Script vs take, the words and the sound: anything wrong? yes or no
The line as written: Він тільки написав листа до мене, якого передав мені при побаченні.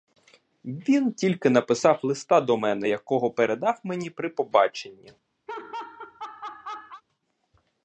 yes